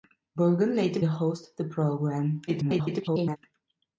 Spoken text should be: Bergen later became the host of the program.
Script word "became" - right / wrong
wrong